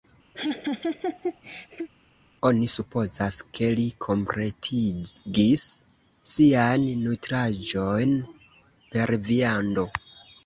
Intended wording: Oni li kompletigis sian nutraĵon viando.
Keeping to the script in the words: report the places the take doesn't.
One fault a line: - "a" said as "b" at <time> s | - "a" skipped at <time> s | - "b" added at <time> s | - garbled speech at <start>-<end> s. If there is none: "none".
- "supozas ke" added at 2.7 s
- "per" added at 9.0 s